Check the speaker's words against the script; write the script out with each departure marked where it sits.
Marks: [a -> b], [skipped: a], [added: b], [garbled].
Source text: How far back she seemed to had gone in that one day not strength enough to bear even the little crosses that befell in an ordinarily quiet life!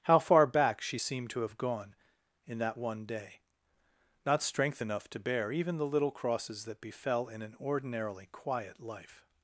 How far back she seemed to [had -> have] gone in that one day not strength enough to bear even the little crosses that befell in an ordinarily quiet life!